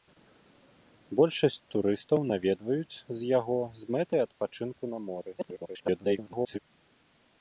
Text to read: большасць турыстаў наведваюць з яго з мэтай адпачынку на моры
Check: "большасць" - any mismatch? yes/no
no